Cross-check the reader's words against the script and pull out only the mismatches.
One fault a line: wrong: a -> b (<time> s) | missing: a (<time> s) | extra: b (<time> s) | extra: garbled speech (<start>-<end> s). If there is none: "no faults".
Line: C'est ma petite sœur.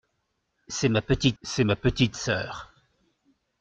extra: c'est ma petite (1.4 s)